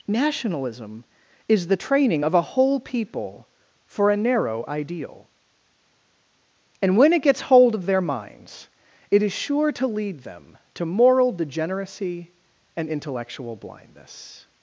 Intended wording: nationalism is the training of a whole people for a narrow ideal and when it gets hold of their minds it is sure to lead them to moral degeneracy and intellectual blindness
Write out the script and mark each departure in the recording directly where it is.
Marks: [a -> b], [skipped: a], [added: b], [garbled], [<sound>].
nationalism is the training of a whole people for a narrow ideal and when it gets hold of their minds it is sure to lead them to moral degeneracy and intellectual blindness